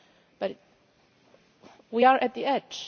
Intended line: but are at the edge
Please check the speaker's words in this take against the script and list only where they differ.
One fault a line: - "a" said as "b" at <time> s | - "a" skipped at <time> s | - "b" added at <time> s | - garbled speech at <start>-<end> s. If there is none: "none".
- "we" added at 1.9 s